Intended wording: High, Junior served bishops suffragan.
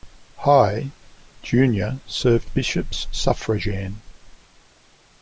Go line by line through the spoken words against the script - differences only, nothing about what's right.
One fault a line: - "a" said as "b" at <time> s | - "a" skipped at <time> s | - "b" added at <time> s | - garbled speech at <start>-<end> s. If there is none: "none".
none